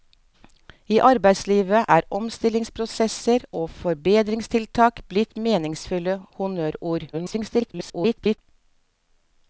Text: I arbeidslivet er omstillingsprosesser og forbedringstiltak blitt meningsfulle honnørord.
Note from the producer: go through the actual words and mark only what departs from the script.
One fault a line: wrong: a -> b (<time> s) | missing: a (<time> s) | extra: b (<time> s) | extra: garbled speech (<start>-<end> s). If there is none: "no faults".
extra: garbled speech (7.1-8.4 s)